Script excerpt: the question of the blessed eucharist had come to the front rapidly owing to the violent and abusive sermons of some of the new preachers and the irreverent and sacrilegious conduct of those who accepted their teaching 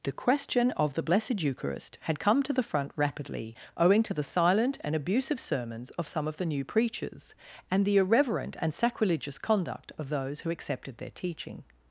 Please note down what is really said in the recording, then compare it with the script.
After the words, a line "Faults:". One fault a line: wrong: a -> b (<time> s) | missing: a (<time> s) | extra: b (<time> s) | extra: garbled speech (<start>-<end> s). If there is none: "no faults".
the question of the blessed eucharist had come to the front rapidly owing to the silent and abusive sermons of some of the new preachers and the irreverent and sacrilegious conduct of those who accepted their teaching
Faults:
wrong: violent -> silent (4.2 s)